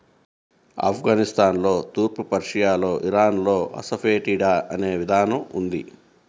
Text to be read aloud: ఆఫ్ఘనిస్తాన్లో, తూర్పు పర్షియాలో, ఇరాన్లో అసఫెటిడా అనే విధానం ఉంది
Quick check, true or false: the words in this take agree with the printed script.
true